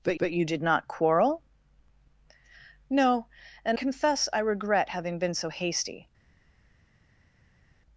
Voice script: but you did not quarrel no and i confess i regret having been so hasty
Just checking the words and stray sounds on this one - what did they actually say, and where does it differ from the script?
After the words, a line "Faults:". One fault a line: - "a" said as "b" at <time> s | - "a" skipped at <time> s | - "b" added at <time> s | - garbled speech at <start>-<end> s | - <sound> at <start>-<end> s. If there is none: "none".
but but you did not quarrel no and confess i regret having been so hasty
Faults:
- "but" added at 0.2 s
- "i" skipped at 3.8 s